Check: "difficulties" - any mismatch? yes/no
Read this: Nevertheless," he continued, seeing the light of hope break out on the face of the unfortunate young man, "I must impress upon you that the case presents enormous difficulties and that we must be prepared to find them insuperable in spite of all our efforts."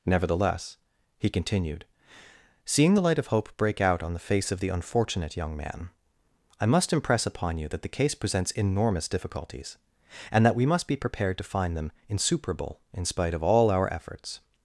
no